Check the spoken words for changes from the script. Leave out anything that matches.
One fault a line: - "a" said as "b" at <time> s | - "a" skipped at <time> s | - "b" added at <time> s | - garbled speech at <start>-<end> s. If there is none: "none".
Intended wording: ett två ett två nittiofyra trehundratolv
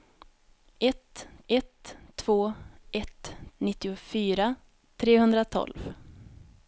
- "ett" added at 1.5 s
- "två" skipped at 3.3 s